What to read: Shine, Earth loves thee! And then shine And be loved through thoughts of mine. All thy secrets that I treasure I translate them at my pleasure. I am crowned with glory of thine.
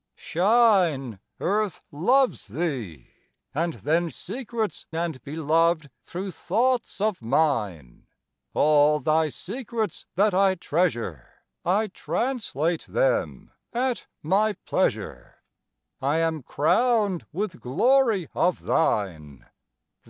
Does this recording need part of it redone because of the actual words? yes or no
yes